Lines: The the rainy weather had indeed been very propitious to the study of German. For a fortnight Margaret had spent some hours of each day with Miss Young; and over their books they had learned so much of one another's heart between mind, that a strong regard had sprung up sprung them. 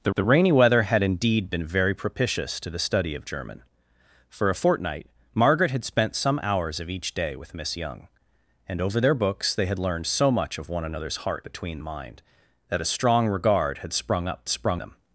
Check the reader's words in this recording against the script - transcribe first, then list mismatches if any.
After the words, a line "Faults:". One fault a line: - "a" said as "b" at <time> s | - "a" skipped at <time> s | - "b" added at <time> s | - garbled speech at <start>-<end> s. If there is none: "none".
The the rainy weather had indeed been very propitious to the study of German. For a fortnight Margaret had spent some hours of each day with Miss Young; and over their books they had learned so much of one another's heart between mind, that a strong regard had sprung up sprung them.
Faults:
none